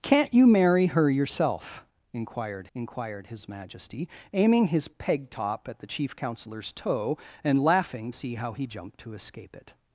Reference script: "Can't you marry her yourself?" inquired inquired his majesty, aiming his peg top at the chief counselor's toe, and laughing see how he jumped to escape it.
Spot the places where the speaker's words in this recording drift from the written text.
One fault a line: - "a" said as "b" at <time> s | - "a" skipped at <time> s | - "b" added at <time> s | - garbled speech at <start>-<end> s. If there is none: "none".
none